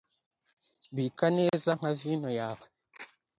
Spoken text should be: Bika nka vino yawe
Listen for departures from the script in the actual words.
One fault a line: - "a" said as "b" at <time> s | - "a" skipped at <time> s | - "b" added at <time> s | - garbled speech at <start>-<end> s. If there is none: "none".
- "neza" added at 1.4 s